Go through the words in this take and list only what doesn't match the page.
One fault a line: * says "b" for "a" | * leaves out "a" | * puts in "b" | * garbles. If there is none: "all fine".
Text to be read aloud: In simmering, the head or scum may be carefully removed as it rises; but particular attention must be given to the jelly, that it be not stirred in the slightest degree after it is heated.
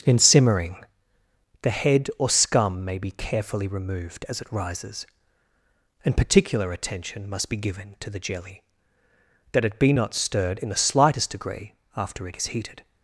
* says "and" for "but"